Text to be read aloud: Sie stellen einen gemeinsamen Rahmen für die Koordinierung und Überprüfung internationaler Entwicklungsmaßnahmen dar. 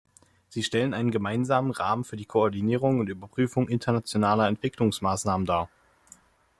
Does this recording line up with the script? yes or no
yes